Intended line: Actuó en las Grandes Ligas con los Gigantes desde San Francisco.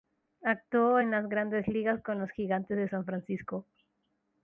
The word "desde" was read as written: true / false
false